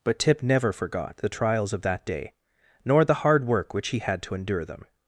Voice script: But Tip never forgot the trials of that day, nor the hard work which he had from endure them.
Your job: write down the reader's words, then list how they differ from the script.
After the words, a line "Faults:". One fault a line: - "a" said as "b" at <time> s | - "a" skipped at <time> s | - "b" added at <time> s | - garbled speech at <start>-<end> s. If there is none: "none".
But Tip never forgot the trials of that day, nor the hard work which he had to endure them.
Faults:
- "from" said as "to" at 4.2 s